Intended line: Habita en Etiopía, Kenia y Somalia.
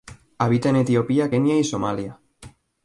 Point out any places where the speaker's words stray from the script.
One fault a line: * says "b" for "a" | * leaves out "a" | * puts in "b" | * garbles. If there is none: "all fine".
all fine